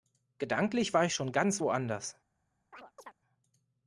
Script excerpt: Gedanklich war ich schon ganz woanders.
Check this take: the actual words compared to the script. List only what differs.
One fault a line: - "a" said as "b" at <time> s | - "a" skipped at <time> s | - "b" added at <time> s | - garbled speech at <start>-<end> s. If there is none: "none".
none